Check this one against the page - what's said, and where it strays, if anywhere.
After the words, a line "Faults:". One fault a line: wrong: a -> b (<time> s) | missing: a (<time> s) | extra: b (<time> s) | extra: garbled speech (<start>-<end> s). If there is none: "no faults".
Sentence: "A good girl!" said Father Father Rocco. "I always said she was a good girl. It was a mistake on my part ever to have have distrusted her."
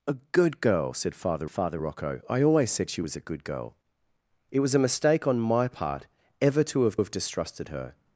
"A good girl!" said Father Father Rocco. "I always said she was a good girl. It was a mistake on my part ever to have have distrusted her."
Faults:
no faults